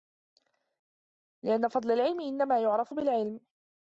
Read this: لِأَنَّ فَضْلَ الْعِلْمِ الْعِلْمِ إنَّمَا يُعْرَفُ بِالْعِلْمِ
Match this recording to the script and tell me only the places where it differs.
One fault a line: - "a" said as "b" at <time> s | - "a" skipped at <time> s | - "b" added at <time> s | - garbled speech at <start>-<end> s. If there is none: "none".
- "الْعِلْمِ" skipped at 2.2 s